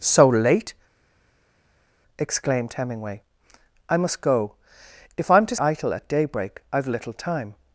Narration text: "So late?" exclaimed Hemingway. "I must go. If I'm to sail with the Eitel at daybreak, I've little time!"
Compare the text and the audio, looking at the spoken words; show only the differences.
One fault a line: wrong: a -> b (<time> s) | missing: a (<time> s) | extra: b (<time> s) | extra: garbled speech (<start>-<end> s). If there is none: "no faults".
missing: sail with the (5.5 s)